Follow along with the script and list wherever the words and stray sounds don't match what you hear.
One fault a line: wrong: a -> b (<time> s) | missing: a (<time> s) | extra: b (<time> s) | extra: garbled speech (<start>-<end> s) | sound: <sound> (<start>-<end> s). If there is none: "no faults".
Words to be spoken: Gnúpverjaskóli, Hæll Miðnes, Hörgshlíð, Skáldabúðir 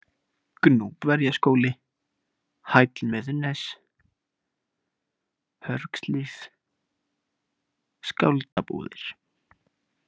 sound: dropout (8.5-8.6 s)